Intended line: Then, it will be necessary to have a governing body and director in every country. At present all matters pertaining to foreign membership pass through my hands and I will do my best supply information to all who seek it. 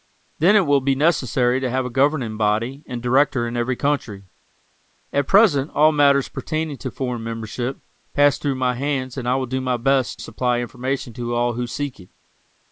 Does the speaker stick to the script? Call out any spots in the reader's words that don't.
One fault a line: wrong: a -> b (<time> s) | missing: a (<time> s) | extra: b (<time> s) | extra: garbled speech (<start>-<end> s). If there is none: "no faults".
no faults